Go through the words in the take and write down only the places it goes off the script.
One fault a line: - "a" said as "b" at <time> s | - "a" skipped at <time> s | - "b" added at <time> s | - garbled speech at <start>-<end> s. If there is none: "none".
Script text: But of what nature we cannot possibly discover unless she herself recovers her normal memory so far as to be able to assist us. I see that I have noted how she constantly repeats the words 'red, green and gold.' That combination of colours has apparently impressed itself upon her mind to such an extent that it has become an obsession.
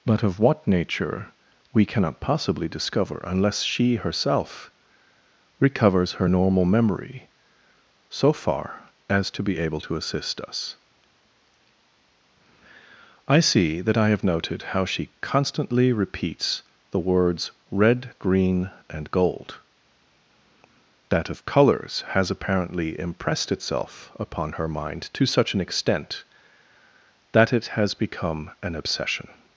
- "combination" skipped at 21.3 s